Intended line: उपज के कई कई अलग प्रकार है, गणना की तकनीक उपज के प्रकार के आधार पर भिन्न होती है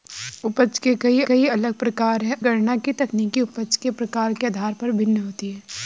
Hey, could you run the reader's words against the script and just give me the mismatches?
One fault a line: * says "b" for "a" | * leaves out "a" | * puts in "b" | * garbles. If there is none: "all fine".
all fine